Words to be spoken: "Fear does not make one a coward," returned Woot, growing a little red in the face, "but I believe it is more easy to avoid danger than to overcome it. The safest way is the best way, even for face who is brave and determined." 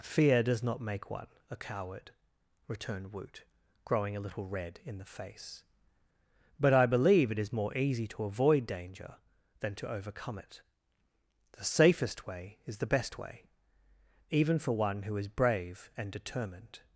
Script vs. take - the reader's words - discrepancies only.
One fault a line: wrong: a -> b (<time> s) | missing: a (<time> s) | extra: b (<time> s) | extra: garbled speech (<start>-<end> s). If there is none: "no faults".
wrong: face -> one (14.7 s)